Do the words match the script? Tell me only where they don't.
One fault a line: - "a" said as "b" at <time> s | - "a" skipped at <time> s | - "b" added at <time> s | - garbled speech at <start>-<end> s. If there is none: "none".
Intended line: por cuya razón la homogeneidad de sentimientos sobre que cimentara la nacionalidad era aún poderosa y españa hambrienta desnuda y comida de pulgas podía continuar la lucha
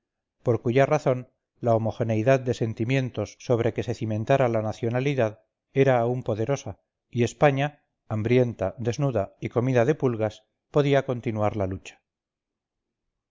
- "se" added at 3.8 s